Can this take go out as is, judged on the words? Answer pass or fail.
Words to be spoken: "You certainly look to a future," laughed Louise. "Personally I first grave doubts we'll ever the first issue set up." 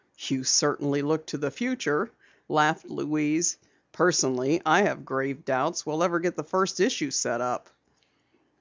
fail